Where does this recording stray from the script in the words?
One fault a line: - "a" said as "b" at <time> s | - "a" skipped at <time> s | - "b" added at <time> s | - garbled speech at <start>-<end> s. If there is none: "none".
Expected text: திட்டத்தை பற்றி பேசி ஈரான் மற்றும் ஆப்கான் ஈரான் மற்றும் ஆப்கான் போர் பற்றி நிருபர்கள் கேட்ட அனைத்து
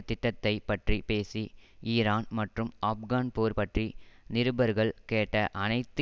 - "ஈரான் மற்றும் ஆப்கான்" skipped at 3.3 s